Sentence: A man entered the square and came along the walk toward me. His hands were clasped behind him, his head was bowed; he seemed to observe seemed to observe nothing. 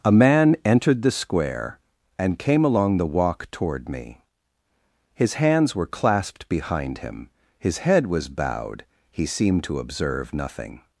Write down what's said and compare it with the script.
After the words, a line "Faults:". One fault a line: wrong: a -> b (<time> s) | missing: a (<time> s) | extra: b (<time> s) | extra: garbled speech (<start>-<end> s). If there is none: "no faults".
A man entered the square and came along the walk toward me. His hands were clasped behind him, his head was bowed; he seemed to observe nothing.
Faults:
missing: seemed to observe (10.3 s)